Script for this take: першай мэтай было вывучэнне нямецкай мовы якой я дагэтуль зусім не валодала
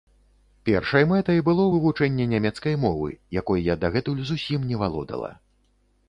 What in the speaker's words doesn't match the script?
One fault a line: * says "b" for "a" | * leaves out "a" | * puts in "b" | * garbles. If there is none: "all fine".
all fine